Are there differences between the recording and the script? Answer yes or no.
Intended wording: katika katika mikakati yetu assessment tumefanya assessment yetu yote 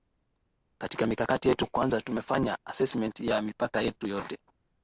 yes